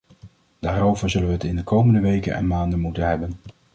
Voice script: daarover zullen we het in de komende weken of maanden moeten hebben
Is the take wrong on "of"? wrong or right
wrong